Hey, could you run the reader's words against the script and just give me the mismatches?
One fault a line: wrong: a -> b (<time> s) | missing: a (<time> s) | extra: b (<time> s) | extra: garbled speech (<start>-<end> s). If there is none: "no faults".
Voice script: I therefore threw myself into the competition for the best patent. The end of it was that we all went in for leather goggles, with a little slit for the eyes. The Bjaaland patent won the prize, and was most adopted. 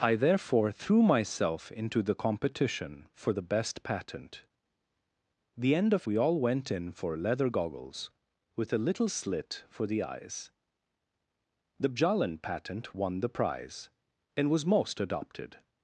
missing: it was that (6.1 s)